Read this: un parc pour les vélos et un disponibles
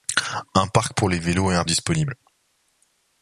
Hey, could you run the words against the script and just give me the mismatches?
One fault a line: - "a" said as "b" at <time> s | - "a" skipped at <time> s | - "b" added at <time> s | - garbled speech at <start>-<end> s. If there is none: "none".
none